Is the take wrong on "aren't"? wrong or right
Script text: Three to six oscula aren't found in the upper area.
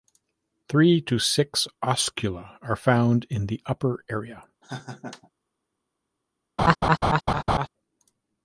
wrong